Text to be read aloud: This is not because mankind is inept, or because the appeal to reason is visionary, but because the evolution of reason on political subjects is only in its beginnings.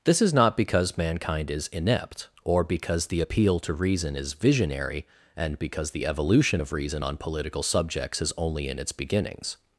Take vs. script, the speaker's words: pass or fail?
fail